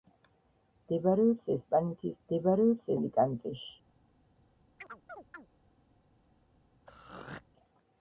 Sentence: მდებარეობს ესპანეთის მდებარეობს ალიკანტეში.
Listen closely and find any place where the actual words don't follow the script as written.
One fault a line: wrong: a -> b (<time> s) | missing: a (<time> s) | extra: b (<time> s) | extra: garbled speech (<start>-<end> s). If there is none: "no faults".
no faults